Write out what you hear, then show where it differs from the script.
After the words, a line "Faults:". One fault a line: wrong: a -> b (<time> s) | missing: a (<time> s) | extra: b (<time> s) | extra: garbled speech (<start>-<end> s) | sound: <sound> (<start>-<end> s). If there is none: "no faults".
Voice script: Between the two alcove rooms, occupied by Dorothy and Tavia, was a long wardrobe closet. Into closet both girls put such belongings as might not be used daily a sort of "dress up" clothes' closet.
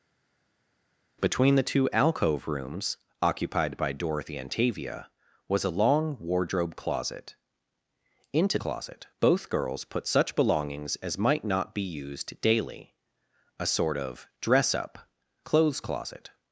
Between the two alcove rooms, occupied by Dorothy and Tavia, was a long wardrobe closet. Into closet both girls put such belongings as might not be used daily a sort of "dress up" clothes' closet.
Faults:
no faults